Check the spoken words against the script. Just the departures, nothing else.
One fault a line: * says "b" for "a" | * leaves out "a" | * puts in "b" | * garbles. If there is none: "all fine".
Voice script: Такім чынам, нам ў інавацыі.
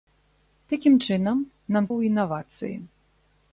all fine